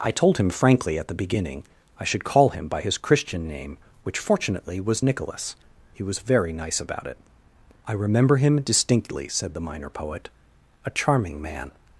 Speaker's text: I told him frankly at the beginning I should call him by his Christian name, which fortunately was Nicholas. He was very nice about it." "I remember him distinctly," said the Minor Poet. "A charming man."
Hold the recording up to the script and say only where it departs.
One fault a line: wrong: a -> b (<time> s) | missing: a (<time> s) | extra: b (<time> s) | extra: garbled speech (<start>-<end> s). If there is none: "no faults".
no faults